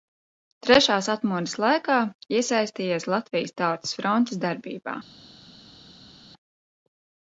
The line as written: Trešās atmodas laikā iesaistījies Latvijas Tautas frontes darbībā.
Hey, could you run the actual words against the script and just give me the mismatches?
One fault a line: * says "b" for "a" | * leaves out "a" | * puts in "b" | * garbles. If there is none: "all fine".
all fine